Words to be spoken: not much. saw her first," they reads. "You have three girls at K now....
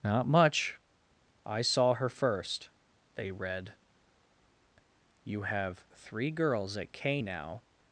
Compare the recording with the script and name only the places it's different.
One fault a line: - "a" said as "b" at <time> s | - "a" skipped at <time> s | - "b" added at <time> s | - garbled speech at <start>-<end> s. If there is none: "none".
- "I" added at 1.4 s
- "reads" said as "read" at 3.3 s